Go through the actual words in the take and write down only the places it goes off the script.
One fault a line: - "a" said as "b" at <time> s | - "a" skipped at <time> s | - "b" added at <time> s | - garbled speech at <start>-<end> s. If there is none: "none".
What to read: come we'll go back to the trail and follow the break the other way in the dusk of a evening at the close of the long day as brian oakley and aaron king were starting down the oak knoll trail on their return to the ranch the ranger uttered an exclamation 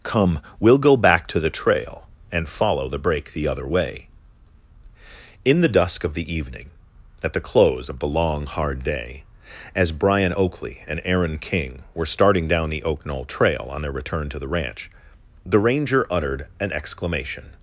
- "a" said as "the" at 6.2 s
- "hard" added at 8.5 s